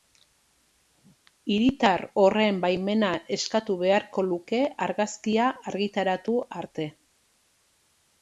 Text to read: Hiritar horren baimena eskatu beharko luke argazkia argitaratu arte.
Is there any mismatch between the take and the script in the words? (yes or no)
no